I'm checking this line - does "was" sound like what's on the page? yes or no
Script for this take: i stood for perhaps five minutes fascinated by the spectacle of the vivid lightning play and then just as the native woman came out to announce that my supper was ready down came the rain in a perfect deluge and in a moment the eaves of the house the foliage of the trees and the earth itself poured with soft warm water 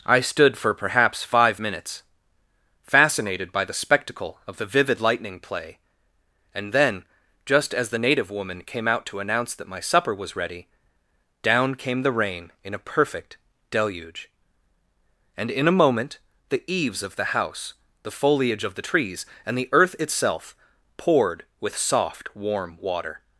yes